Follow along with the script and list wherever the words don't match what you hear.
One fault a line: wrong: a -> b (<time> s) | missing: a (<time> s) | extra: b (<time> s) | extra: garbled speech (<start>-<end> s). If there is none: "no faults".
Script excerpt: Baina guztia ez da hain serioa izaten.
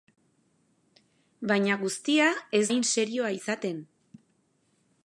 missing: da (2.6 s)